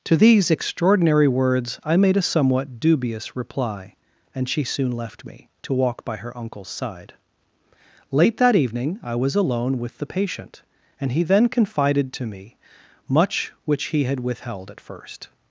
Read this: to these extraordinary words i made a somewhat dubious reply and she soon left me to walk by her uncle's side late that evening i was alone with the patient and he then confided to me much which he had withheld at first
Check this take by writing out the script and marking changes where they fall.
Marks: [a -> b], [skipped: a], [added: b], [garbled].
to these extraordinary words i made a somewhat dubious reply and she soon left me to walk by her uncle's side late that evening i was alone with the patient and he then confided to me much which he had withheld at first